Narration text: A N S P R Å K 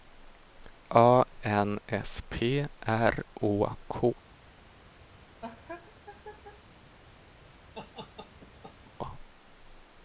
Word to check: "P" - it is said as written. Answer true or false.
true